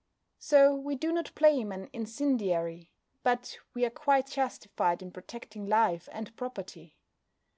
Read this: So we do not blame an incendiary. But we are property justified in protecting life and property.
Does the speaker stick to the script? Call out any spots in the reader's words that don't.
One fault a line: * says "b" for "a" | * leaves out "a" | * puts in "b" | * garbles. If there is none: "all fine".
* says "quite" for "property"